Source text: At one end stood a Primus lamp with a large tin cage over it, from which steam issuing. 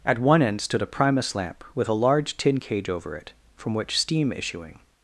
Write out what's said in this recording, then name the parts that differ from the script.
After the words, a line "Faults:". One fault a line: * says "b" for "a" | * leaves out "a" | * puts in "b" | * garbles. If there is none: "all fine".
At one end stood a Primus lamp with a large tin cage over it, from which steam issuing.
Faults:
all fine